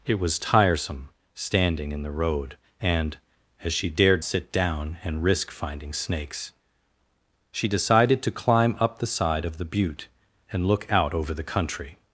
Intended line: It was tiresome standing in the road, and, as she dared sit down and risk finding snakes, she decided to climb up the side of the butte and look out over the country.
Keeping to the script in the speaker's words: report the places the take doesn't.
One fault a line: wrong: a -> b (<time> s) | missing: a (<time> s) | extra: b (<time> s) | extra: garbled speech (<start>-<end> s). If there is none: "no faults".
no faults